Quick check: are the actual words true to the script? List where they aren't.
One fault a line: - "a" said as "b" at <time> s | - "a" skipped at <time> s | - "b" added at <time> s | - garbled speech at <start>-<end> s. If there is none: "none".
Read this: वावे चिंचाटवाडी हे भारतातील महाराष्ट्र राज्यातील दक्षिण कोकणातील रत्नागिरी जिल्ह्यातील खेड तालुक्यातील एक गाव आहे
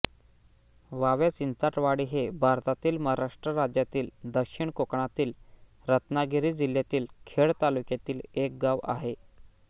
none